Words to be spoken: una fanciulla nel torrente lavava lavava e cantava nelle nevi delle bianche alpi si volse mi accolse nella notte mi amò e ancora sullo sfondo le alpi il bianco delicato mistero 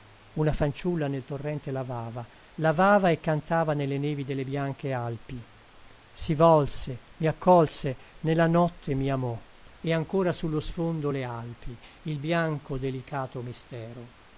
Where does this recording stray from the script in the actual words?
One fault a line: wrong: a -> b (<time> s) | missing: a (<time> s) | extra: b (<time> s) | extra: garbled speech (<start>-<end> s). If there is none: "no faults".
no faults